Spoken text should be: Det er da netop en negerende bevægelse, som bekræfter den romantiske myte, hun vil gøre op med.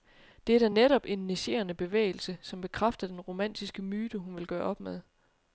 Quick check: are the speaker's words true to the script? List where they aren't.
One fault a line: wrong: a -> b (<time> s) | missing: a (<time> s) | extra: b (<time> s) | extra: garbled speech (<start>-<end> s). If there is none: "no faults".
no faults